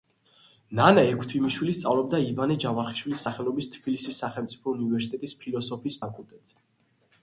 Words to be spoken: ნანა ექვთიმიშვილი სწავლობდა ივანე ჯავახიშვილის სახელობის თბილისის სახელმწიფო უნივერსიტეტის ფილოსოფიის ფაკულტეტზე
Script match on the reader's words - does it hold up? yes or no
yes